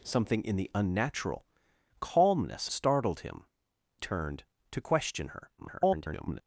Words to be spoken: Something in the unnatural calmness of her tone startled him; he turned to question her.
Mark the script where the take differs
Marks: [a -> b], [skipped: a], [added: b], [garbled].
Something in the unnatural calmness [skipped: of her tone] startled him; [skipped: he] turned to question her. [garbled]